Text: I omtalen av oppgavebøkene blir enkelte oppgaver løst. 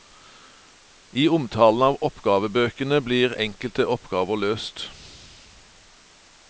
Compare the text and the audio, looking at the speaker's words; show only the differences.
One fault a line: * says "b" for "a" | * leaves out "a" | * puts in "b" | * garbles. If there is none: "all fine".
all fine